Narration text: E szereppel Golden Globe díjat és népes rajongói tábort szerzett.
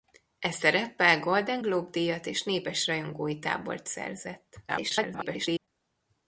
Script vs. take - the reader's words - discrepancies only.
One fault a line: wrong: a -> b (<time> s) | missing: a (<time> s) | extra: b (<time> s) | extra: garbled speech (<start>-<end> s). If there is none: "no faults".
extra: garbled speech (4.7-5.7 s)